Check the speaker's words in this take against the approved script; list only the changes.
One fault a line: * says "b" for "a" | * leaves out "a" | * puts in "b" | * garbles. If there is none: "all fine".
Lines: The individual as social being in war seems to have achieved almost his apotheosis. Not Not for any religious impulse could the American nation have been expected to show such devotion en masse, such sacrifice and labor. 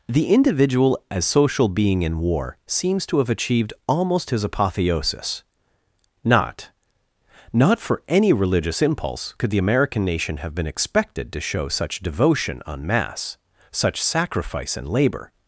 all fine